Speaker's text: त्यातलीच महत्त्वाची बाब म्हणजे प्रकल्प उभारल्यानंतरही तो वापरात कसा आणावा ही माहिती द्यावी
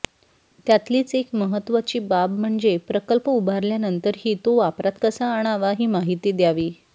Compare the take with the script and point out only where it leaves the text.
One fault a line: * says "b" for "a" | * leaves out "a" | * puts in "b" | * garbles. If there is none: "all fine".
* puts in "एक"